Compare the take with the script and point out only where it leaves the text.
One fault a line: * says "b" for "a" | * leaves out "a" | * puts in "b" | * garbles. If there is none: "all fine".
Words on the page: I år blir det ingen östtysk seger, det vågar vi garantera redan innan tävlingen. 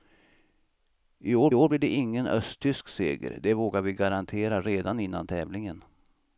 * puts in "år"